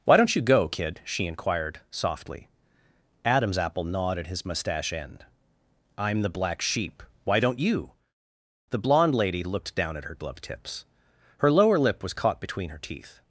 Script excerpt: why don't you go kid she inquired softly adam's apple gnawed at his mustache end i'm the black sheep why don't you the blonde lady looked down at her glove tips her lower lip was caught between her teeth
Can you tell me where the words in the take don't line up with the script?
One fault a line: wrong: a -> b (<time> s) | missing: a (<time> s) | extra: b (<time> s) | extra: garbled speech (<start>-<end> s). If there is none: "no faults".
no faults